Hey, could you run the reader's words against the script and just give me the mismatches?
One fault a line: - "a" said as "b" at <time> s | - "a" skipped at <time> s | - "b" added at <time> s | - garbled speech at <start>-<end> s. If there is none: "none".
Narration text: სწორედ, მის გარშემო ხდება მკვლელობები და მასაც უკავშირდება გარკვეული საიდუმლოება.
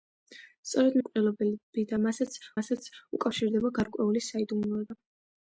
- "მის გარშემო ხდება" skipped at 0.9 s
- "მასაც" added at 2.6 s